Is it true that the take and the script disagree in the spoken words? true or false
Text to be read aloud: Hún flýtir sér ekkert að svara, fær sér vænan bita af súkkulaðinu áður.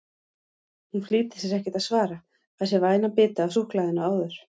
false